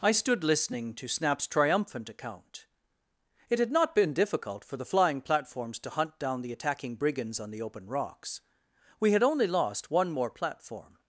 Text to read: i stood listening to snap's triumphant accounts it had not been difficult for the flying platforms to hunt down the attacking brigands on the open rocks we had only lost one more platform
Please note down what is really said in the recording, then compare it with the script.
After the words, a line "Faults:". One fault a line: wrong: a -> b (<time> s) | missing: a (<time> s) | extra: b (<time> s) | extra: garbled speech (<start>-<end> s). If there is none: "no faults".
i stood listening to snap's triumphant account it had not been difficult for the flying platforms to hunt down the attacking brigands on the open rocks we had only lost one more platform
Faults:
wrong: accounts -> account (2.1 s)